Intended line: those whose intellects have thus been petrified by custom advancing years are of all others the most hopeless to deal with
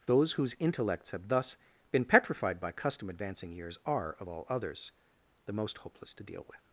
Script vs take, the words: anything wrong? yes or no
no